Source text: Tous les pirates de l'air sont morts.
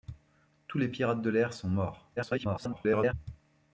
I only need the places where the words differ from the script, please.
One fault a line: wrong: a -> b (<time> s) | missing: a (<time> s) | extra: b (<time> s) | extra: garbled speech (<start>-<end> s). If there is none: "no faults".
extra: garbled speech (2.2-3.1 s)